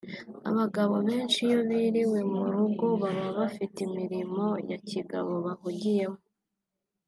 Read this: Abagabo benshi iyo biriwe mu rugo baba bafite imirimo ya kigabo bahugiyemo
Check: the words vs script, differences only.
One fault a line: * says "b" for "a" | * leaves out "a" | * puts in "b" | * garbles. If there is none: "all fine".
all fine